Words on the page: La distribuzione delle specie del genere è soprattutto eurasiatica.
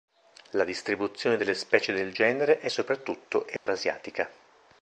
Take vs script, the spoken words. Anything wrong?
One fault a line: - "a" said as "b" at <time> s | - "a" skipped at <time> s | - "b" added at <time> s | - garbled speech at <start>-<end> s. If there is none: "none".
none